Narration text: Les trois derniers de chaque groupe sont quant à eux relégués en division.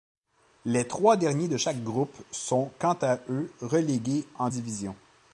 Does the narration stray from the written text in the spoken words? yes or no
no